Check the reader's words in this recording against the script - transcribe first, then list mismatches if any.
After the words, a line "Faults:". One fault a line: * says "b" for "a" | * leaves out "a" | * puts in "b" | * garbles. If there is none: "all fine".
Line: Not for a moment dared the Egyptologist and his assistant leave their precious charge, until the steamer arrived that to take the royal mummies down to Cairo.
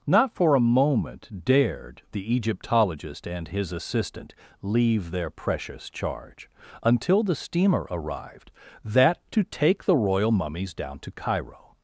Not for a moment dared the Egyptologist and his assistant leave their precious charge, until the steamer arrived that to take the royal mummies down to Cairo.
Faults:
all fine